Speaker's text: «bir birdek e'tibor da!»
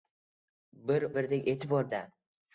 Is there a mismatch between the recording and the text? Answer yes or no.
no